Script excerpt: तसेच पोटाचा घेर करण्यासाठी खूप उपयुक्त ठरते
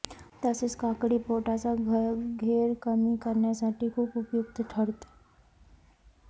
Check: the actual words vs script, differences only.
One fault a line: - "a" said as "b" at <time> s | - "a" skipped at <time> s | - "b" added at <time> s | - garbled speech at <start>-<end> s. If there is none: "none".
- "काकडी" added at 0.8 s
- "कमी" added at 2.8 s